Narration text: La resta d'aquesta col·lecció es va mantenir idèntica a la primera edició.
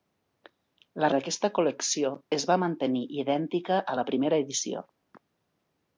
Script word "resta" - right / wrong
wrong